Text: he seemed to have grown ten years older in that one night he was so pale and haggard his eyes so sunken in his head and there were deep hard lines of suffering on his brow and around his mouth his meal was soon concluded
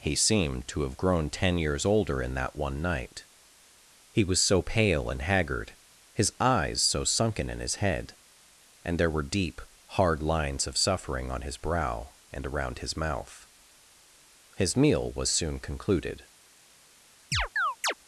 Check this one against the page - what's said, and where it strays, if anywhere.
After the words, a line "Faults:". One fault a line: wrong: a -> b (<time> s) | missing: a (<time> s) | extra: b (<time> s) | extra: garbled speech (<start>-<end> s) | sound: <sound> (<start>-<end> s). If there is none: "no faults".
he seemed to have grown ten years older in that one night he was so pale and haggard his eyes so sunken in his head and there were deep hard lines of suffering on his brow and around his mouth his meal was soon concluded
Faults:
sound: chirp (17.3-17.9 s)